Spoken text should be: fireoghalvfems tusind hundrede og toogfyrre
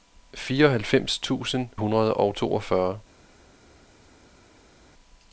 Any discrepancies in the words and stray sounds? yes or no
no